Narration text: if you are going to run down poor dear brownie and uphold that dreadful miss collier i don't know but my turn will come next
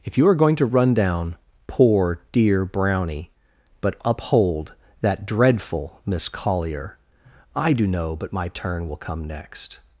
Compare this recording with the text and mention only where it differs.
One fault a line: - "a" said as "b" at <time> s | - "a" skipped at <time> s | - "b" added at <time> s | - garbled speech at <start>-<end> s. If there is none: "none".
- "and" said as "but" at 3.8 s
- "don't" said as "do" at 7.7 s